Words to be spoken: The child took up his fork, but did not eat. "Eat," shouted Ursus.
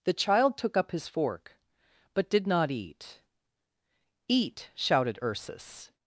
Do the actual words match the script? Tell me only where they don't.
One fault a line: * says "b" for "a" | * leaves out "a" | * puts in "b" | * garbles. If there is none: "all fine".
all fine